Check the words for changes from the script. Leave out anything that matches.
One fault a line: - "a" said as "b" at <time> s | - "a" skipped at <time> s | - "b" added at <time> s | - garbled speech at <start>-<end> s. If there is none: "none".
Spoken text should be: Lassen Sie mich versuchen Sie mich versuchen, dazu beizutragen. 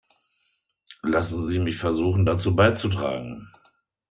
- "Sie mich versuchen" skipped at 2.2 s